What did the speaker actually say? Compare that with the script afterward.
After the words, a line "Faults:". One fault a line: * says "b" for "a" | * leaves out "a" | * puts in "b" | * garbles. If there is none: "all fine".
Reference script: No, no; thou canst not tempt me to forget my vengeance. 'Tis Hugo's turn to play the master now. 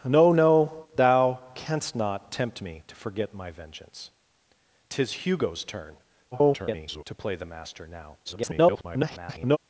No, no; thou canst not tempt me to forget my vengeance. 'Tis Hugo's turn [garbled] to play the master now. [garbled]
Faults:
* garbles
* garbles